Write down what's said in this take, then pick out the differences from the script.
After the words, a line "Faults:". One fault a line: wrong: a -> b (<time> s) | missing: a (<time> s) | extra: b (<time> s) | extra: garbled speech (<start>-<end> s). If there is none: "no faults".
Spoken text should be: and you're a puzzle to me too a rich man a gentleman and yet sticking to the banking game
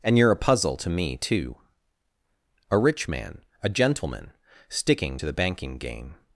and you're a puzzle to me too a rich man a gentleman sticking to the banking game
Faults:
missing: and yet (4.3 s)